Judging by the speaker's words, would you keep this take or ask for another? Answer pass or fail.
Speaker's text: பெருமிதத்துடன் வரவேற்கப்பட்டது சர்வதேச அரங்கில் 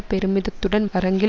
fail